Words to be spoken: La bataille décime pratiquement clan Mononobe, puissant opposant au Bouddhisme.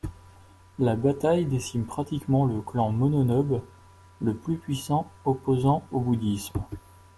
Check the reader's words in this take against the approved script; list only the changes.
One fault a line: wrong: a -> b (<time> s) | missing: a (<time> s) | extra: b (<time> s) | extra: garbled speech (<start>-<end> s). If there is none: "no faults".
extra: le (2.5 s)
extra: le plus (4.2 s)